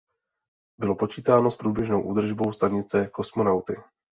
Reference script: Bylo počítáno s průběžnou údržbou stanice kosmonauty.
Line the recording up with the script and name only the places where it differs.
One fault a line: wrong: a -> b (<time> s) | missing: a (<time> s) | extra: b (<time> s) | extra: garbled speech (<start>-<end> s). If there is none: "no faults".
no faults